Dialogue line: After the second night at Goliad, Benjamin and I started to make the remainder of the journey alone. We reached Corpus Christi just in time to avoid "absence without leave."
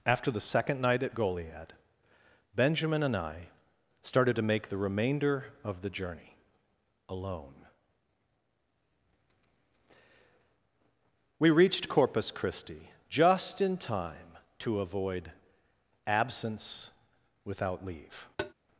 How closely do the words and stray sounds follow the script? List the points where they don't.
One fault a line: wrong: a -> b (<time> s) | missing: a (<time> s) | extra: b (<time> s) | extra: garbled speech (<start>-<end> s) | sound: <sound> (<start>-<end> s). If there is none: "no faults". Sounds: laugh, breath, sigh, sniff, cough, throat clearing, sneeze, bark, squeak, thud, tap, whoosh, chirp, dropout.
sound: tap (18.4-18.5 s)